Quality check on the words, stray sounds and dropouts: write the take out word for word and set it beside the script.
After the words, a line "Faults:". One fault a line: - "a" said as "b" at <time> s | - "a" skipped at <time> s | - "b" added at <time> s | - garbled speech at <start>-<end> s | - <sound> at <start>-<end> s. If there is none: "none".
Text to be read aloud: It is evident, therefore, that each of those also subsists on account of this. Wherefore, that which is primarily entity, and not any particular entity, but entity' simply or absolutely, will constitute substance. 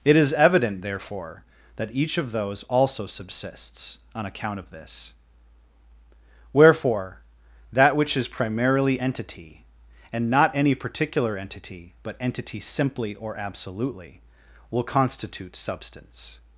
It is evident, therefore, that each of those also subsists on account of this. Wherefore, that which is primarily entity, and not any particular entity, but entity' simply or absolutely, will constitute substance.
Faults:
none